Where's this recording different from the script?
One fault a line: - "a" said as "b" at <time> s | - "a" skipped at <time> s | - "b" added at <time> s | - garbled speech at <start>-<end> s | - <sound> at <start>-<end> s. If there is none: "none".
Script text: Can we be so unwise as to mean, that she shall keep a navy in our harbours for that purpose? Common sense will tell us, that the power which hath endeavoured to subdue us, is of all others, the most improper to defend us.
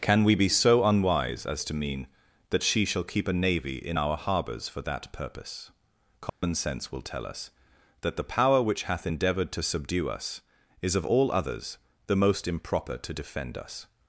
- dropout at 6.3-6.4 s